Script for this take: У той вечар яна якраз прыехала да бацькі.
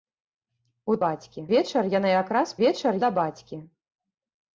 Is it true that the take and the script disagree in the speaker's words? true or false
true